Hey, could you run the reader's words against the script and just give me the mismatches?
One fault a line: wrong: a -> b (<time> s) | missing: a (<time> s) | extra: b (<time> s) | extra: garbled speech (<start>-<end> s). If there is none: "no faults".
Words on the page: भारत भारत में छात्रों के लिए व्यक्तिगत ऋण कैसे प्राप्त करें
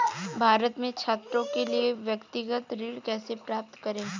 missing: भारत (0.8 s)